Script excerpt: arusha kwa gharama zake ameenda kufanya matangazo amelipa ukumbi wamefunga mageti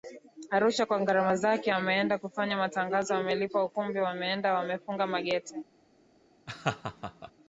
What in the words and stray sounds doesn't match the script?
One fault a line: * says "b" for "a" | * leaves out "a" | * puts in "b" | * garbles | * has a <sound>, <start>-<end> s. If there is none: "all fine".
* puts in "wameenda"
* has a laugh, 6.5-7.3 s